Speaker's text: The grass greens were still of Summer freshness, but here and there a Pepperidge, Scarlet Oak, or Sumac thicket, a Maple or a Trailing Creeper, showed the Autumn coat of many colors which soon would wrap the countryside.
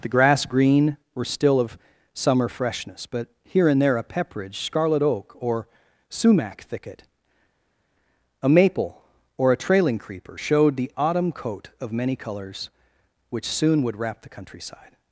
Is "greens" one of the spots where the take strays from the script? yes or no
yes